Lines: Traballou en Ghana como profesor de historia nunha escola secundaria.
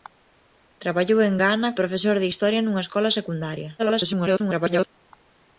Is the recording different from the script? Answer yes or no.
yes